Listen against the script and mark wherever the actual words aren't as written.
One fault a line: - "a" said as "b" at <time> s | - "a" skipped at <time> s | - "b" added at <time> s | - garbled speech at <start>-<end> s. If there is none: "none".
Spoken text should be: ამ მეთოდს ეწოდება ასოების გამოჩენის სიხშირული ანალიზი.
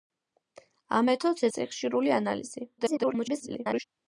- "ეწოდება ასოების გამოჩენის" skipped at 1.5 s
- garbled speech at 2.8-3.8 s